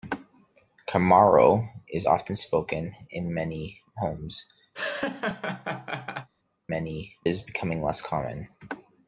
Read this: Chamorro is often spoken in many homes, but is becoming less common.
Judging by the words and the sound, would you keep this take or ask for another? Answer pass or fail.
fail